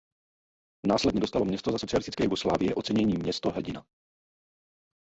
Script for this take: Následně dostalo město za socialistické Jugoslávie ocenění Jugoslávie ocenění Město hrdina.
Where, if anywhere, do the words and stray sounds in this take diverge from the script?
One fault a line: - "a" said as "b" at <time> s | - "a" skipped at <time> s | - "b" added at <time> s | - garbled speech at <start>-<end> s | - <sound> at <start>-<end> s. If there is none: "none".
- "Jugoslávie ocenění" skipped at 3.1 s